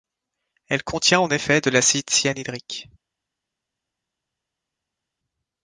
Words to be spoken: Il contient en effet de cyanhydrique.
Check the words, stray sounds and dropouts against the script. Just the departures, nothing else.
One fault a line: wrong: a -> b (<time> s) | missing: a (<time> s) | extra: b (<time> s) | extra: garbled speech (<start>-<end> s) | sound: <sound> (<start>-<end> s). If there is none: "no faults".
wrong: Il -> Elle (0.7 s)
extra: l'acide (1.7 s)